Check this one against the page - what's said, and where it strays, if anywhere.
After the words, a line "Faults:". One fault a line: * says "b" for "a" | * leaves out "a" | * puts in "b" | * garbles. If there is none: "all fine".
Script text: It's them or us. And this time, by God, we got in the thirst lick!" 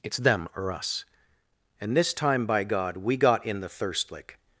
It's them or us. And this time, by God, we got in the thirst lick!"
Faults:
all fine